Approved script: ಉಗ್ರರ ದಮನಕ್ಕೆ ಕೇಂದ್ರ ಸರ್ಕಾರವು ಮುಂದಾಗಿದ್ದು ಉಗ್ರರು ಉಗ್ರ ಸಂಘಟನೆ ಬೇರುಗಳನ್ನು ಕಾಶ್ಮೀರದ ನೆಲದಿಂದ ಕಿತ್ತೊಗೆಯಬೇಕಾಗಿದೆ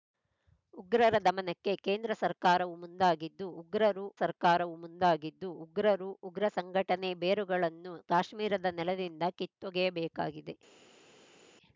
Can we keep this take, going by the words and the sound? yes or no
no